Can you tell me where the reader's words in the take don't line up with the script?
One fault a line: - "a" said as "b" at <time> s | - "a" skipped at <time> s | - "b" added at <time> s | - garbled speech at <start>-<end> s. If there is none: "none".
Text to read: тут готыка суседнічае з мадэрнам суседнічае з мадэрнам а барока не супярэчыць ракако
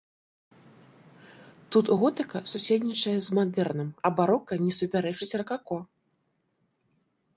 - "суседнічае з мадэрнам" skipped at 3.9 s